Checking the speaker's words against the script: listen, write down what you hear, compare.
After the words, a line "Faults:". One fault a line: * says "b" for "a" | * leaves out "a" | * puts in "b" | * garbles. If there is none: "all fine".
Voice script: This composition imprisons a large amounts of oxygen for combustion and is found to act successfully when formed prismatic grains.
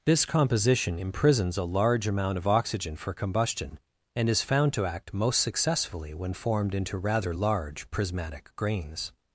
This composition imprisons a large amount of oxygen for combustion and is found to act most successfully when formed into rather large prismatic grains.
Faults:
* says "amount" for "amounts"
* puts in "most"
* puts in "into rather large"